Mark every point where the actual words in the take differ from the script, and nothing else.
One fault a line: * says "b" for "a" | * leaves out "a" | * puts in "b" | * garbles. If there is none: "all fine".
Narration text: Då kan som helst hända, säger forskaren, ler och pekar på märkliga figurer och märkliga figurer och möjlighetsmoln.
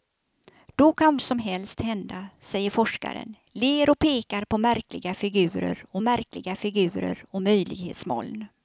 all fine